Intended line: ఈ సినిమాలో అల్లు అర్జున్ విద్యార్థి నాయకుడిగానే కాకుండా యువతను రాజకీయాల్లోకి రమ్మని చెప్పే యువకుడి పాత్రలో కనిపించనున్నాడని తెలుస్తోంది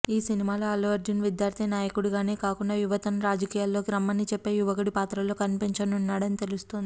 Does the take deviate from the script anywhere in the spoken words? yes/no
no